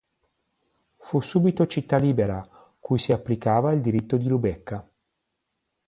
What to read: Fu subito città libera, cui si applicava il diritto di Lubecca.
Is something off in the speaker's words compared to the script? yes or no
no